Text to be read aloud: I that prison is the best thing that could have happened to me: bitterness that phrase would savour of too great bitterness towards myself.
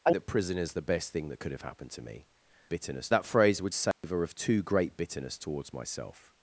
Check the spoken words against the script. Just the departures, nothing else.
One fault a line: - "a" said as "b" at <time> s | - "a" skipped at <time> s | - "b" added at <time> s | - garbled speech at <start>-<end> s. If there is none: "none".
none